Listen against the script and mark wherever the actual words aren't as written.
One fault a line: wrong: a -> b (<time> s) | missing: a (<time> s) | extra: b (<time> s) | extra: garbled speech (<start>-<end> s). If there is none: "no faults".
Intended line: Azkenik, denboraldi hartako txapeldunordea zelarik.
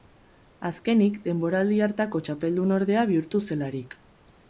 extra: bihurtu (3.1 s)